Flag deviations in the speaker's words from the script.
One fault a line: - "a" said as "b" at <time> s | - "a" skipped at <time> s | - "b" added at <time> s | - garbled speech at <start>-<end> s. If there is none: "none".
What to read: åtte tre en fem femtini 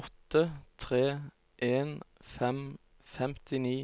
none